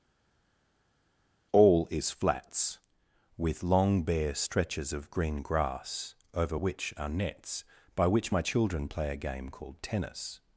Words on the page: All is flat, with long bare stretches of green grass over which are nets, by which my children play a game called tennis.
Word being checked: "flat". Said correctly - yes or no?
no